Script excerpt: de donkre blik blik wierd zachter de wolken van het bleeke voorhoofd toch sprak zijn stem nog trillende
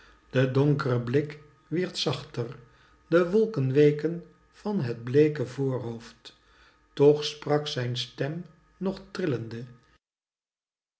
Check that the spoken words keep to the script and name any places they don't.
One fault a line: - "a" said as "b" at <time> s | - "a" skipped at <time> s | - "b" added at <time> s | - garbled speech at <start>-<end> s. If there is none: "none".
- "blik" skipped at 1.4 s
- "weken" added at 3.7 s